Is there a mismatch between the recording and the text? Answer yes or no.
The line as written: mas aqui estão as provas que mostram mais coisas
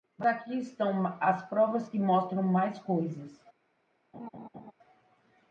no